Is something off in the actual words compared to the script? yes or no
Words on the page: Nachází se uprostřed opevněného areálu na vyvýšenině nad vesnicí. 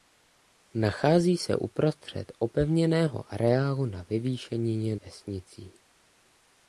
yes